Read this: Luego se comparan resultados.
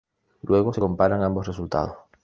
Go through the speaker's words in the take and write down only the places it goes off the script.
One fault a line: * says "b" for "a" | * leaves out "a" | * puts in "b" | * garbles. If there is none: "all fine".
* puts in "ambos"